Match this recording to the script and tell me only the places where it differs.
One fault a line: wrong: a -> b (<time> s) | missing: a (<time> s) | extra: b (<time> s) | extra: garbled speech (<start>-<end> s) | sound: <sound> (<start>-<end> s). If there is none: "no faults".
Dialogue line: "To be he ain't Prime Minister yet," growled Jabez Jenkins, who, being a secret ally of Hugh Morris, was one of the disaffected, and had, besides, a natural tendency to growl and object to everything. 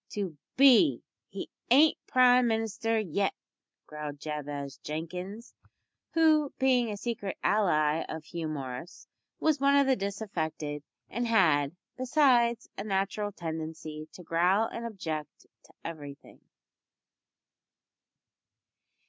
no faults